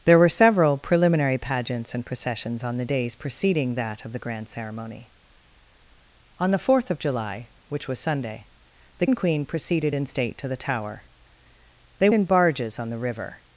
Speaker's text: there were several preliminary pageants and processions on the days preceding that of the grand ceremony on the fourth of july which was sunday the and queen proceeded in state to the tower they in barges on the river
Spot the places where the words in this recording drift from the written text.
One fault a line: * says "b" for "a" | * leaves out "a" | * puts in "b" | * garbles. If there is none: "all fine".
all fine